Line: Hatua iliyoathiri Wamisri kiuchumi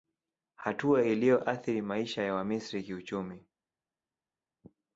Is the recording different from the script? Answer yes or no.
yes